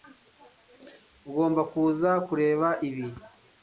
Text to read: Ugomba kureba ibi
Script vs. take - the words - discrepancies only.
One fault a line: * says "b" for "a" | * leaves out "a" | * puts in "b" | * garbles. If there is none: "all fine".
* puts in "kuza"